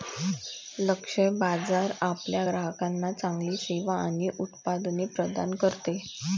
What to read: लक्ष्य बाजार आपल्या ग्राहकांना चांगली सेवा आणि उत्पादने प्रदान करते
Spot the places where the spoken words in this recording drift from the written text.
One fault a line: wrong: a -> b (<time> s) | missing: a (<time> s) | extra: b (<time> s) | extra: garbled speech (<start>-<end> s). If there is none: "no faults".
no faults